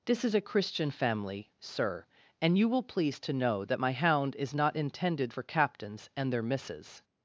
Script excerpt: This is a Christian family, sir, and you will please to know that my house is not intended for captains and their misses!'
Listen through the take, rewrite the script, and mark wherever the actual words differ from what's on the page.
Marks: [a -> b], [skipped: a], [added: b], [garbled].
This is a Christian family, sir, and you will please to know that my [house -> hound] is not intended for captains and their misses!'